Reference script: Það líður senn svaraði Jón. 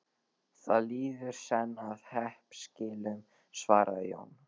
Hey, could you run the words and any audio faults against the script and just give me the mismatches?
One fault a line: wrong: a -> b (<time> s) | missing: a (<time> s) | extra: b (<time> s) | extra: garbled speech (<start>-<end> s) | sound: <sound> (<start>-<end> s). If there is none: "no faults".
extra: að hreppskilum (1.9 s)